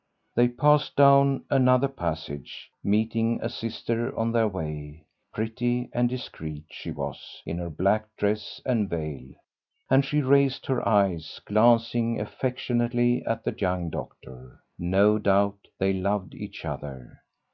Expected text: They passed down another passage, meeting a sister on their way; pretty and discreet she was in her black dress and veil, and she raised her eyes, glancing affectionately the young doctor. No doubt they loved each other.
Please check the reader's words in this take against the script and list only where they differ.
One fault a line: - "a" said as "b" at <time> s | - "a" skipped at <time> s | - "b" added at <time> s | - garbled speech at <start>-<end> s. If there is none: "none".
- "at" added at 13.3 s